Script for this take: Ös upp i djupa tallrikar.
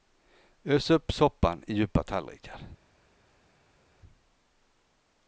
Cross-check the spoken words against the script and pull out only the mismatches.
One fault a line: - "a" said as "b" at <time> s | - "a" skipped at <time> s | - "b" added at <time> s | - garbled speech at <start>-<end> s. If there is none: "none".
- "soppan" added at 1.1 s